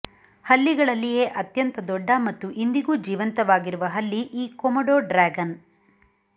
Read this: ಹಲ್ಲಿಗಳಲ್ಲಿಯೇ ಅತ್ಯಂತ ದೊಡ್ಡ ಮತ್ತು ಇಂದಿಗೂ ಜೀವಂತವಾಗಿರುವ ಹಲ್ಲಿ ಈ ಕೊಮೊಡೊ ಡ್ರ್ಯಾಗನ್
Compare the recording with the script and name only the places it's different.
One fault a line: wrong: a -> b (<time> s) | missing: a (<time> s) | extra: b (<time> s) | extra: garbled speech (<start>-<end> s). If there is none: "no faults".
no faults